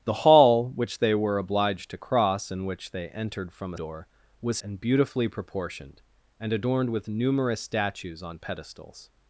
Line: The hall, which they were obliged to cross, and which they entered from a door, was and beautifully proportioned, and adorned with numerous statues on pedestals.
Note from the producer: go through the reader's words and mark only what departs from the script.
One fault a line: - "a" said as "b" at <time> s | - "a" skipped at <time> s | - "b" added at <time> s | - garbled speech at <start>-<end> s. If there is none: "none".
none